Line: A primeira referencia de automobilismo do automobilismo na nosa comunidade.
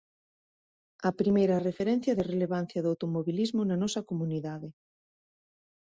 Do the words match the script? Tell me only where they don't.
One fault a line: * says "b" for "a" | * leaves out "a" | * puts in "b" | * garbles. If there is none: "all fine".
* says "relevancia" for "automobilismo"